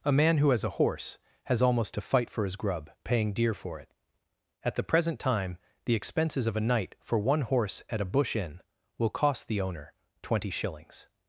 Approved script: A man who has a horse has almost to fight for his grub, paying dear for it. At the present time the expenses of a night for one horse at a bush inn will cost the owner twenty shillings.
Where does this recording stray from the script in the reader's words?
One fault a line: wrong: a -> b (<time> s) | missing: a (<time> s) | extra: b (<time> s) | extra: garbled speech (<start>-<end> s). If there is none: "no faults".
no faults